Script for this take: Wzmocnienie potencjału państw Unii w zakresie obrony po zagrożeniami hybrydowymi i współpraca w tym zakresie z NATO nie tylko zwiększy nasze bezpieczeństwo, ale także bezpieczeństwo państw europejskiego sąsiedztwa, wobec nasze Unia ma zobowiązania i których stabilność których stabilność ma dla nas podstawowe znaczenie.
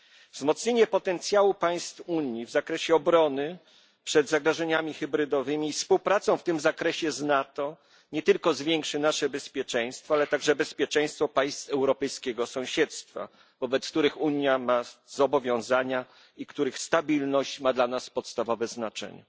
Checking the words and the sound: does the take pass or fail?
fail